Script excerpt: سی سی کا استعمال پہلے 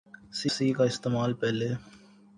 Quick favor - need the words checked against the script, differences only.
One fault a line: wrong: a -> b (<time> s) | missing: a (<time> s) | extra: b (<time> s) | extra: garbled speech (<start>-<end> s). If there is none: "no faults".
no faults